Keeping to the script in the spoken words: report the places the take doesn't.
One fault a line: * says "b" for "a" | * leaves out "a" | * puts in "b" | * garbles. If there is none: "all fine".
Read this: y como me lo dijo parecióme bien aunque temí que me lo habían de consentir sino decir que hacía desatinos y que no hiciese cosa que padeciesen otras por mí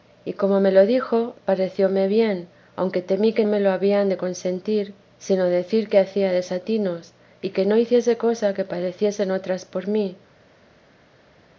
all fine